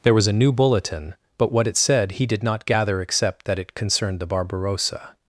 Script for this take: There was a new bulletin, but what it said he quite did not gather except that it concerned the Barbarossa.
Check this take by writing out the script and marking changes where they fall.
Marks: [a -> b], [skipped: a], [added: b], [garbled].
There was a new bulletin, but what it said he [skipped: quite] did not gather except that it concerned the Barbarossa.